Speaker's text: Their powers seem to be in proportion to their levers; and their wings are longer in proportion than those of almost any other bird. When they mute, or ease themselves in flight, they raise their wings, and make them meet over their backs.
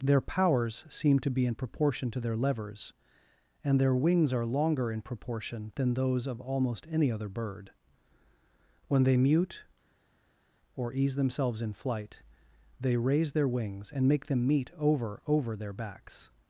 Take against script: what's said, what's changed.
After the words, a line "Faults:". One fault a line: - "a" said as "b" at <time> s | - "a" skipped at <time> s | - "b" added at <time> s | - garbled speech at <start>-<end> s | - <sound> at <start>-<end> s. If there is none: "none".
Their powers seem to be in proportion to their levers; and their wings are longer in proportion than those of almost any other bird. When they mute, or ease themselves in flight, they raise their wings, and make them meet over over their backs.
Faults:
- "over" added at 15.3 s